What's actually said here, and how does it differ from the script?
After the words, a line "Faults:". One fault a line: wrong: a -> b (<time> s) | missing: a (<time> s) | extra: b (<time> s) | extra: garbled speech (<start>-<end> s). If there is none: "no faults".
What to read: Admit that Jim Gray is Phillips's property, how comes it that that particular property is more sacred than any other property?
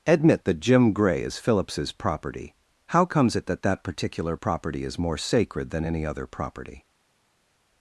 Admit that Jim Gray is Phillips's property, how comes it that that particular property is more sacred than any other property?
Faults:
no faults